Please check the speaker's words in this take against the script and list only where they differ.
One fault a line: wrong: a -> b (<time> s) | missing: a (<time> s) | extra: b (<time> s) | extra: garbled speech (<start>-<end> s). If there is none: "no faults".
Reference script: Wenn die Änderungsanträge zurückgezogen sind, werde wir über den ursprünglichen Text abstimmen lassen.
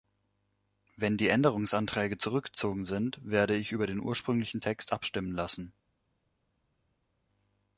wrong: wir -> ich (3.5 s)